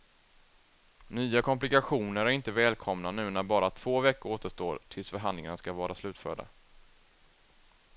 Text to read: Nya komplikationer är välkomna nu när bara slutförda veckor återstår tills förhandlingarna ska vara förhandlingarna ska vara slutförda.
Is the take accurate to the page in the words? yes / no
no